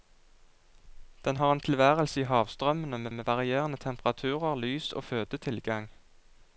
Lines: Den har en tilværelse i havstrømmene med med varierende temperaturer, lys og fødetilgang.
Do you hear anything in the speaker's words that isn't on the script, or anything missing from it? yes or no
no